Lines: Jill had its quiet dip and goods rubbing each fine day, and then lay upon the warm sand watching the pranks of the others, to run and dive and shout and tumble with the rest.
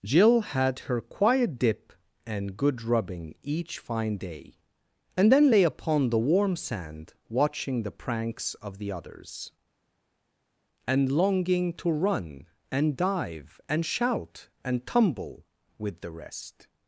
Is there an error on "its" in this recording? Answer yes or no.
yes